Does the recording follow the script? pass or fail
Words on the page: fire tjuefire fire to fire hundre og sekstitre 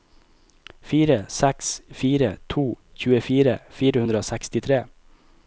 fail